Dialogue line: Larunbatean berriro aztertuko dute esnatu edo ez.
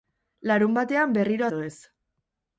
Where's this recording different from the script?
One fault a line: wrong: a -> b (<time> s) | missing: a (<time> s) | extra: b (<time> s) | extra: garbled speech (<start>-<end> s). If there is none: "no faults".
missing: aztertuko dute esnatu (1.4 s)